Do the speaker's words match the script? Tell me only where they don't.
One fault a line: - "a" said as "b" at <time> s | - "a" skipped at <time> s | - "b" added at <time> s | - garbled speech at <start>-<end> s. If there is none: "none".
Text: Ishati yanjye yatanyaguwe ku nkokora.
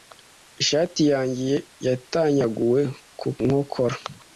none